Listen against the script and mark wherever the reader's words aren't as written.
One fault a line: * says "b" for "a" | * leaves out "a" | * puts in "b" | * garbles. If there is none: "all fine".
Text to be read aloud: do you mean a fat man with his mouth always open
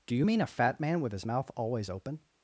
all fine